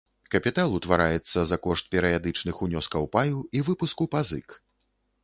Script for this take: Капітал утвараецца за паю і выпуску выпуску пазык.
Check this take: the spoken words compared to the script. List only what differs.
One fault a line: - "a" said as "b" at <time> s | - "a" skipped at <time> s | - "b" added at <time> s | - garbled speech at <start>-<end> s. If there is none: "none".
- "кошт перыядычных унёскаў" added at 1.6 s
- "выпуску" skipped at 4.1 s